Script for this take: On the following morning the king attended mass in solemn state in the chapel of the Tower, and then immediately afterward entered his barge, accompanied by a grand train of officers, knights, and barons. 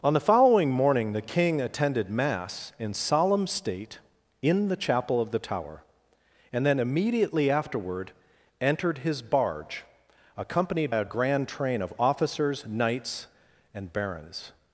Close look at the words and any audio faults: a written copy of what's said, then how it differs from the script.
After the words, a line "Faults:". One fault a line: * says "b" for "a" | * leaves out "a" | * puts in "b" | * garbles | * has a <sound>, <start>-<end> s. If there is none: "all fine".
On the following morning the king attended mass in solemn state in the chapel of the Tower, and then immediately afterward entered his barge, accompanied a grand train of officers, knights, and barons.
Faults:
* leaves out "by"